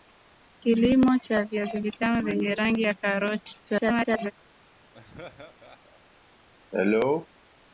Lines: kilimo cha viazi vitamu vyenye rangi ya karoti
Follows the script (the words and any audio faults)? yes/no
no